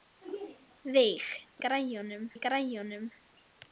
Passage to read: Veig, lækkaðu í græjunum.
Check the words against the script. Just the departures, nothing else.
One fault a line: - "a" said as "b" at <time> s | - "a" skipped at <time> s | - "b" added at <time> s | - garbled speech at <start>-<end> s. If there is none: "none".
- "lækkaðu" said as "græjunum" at 1.7 s